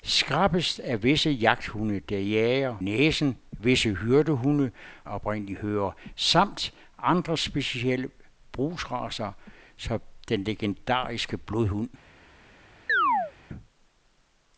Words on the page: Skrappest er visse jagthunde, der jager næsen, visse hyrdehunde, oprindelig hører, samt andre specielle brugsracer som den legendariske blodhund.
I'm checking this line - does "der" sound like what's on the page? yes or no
yes